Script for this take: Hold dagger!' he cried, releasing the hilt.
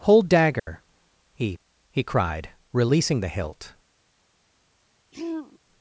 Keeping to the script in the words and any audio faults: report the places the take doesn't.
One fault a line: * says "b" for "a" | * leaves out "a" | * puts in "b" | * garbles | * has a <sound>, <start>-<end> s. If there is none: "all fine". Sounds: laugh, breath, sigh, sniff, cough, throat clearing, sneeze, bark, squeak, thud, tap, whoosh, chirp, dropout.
* has a dropout, 0.6-0.7 s
* puts in "he"
* has a throat clearing, 5.1-5.6 s